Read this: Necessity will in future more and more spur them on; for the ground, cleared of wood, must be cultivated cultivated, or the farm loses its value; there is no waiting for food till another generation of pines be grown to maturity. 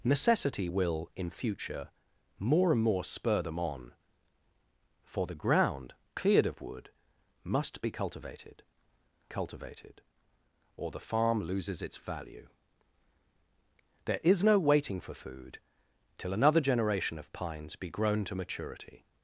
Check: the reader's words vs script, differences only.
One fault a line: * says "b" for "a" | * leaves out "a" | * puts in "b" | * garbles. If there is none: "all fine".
all fine